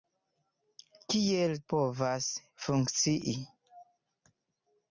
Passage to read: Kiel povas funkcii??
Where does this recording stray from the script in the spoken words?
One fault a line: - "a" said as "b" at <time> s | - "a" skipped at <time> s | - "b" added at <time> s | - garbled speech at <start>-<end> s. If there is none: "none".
none